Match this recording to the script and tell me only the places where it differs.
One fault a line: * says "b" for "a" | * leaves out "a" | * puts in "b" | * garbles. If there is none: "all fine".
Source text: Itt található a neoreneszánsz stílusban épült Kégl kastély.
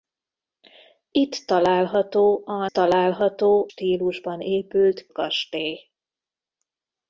* says "található" for "neoreneszánsz"
* leaves out "Kégl"